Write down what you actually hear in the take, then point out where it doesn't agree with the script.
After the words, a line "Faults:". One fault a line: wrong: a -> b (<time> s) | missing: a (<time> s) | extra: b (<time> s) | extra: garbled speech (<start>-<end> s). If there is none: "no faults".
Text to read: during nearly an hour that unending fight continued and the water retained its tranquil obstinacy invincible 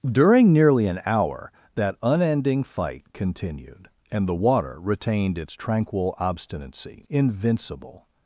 during nearly an hour that unending fight continued and the water retained its tranquil obstinacy invincible
Faults:
no faults